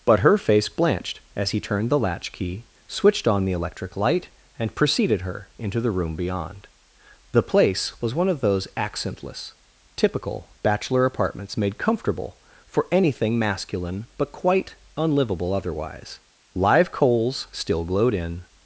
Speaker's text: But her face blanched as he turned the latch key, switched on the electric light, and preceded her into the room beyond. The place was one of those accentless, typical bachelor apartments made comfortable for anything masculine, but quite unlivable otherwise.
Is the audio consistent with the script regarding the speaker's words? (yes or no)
no